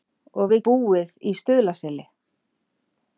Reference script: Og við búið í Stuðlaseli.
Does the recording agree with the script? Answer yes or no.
yes